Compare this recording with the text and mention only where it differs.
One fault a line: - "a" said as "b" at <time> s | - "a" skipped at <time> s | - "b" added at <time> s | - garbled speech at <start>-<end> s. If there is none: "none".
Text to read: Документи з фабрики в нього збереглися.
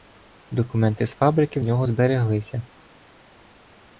none